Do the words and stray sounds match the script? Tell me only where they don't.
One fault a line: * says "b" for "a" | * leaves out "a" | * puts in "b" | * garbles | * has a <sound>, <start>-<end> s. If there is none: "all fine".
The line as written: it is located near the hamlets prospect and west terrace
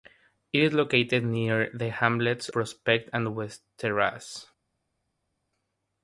all fine